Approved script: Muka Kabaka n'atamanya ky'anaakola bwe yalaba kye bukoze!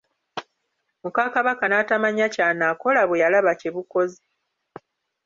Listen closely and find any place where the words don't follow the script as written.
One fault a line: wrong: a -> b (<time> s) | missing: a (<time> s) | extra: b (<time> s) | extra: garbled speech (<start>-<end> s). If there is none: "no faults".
no faults